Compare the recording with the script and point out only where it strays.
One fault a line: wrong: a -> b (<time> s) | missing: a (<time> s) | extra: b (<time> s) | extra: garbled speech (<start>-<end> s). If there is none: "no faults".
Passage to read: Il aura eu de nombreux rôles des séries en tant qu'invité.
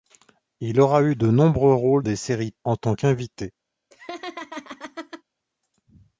no faults